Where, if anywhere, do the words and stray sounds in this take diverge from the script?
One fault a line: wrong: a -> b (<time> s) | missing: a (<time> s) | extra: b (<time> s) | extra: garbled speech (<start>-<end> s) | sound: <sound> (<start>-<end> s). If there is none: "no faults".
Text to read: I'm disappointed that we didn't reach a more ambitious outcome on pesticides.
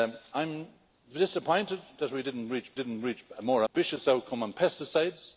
extra: didn't reach (2.7 s)
sound: dropout (3.7-3.7 s)